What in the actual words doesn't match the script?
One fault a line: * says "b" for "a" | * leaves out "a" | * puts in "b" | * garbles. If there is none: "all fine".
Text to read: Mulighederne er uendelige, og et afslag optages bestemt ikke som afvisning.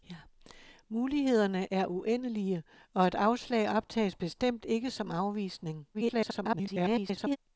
* garbles